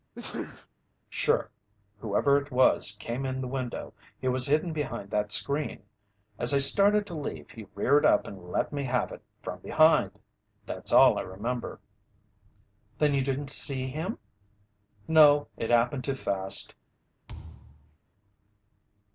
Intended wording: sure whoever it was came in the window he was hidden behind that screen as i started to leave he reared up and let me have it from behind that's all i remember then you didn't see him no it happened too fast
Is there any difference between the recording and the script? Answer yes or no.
no